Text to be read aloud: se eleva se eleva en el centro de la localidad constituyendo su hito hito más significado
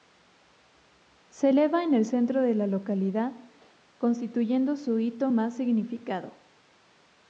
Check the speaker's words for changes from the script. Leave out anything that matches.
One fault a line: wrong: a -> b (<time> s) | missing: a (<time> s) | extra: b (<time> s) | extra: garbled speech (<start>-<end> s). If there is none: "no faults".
missing: se eleva (1.8 s)
missing: hito (5.3 s)